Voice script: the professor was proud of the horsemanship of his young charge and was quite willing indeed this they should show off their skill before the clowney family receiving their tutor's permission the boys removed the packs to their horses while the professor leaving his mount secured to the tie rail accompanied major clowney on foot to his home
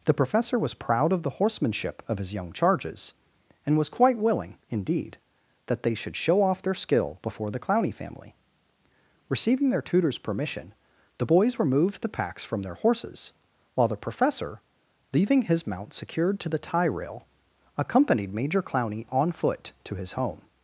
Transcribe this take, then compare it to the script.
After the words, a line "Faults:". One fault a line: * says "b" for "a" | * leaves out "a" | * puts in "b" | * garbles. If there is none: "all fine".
the professor was proud of the horsemanship of his young charges and was quite willing indeed that they should show off their skill before the clowney family receiving their tutor's permission the boys removed the packs from their horses while the professor leaving his mount secured to the tie rail accompanied major clowney on foot to his home
Faults:
* says "charges" for "charge"
* says "that" for "this"
* says "from" for "to"